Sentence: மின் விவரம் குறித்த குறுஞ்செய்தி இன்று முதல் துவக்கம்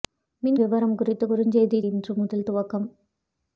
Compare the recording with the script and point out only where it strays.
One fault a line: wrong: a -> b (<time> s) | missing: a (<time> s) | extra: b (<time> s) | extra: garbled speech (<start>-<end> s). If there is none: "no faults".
no faults